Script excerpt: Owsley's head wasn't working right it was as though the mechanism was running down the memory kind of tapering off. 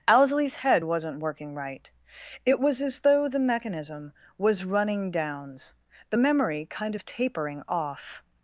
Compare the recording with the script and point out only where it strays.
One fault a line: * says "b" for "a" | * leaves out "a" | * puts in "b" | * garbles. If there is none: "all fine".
* says "downs" for "down"